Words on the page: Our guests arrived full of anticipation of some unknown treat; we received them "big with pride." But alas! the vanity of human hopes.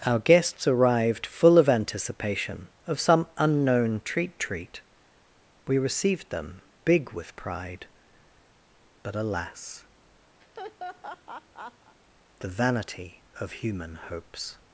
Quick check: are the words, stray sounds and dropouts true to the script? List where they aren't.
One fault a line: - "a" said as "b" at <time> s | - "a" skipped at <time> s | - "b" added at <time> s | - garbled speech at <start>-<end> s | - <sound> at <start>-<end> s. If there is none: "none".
- "treat" added at 4.4 s
- laugh at 10.4-12.0 s